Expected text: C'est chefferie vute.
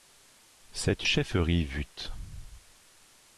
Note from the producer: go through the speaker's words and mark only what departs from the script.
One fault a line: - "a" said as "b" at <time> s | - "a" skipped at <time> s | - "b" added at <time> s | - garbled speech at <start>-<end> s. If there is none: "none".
none